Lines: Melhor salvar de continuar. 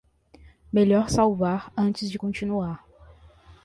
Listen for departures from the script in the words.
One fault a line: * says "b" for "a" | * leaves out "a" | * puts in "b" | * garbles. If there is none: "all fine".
* puts in "antes"